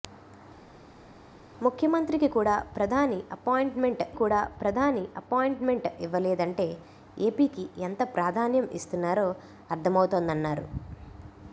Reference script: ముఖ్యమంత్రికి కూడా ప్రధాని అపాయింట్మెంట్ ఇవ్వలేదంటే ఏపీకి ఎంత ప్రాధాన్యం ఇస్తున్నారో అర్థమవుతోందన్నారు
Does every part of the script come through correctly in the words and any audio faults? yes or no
no